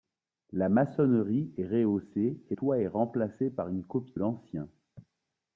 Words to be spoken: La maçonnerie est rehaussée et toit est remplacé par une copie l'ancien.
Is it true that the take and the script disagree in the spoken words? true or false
false